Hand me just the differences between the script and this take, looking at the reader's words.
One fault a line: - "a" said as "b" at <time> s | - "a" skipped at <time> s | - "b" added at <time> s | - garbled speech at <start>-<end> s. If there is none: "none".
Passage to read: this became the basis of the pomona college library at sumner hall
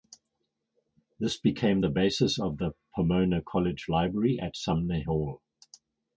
none